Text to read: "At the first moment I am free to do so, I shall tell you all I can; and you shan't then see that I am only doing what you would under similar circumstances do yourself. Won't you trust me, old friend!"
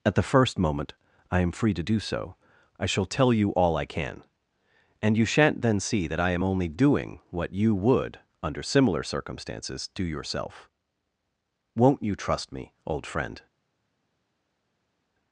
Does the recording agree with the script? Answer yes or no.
yes